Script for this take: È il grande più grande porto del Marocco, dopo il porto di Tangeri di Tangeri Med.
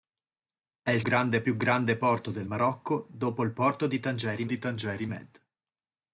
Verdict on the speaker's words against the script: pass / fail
pass